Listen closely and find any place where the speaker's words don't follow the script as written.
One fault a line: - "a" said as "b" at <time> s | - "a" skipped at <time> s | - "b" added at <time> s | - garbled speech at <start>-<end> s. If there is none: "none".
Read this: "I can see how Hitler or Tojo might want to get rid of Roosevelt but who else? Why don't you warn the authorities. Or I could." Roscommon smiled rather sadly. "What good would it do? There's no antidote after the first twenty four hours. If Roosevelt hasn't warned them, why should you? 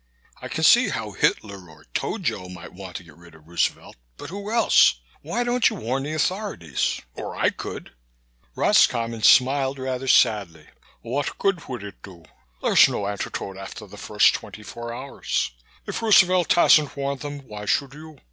none